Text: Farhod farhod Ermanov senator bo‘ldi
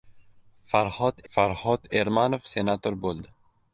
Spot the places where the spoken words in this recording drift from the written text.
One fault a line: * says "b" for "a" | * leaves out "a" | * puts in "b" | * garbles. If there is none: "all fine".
all fine